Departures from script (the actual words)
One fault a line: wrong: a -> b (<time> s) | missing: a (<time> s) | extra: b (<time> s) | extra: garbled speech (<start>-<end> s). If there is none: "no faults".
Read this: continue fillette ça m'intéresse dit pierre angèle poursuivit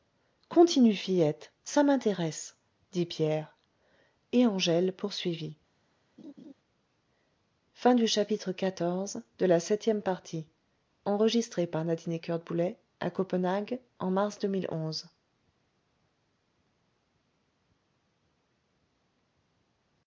extra: et (4.3 s)